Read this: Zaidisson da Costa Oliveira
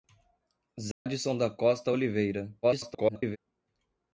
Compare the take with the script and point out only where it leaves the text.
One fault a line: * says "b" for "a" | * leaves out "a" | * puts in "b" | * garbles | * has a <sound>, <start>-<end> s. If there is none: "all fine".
* has a dropout, 0.9-1.1 s
* garbles